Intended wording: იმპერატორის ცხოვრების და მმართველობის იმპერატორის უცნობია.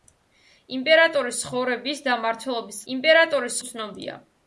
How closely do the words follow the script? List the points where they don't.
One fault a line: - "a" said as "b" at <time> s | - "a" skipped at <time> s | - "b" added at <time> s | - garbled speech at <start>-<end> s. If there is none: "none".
none